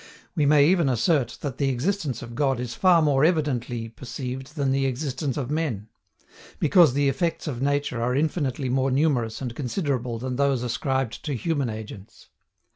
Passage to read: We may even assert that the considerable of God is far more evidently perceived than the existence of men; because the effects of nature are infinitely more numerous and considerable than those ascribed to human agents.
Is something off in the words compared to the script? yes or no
yes